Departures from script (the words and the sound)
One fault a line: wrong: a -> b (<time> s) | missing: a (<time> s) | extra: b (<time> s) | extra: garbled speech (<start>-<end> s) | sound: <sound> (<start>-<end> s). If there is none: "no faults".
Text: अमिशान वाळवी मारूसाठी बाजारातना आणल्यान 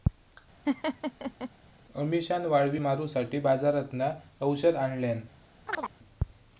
sound: laugh (0.7-1.5 s)
extra: औषध (4.4 s)
sound: chirp (5.7-5.9 s)